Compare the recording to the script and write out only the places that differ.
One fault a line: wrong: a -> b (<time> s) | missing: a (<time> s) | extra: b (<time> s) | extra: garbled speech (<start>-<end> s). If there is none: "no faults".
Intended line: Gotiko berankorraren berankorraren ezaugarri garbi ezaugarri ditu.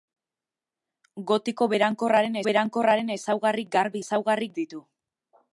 no faults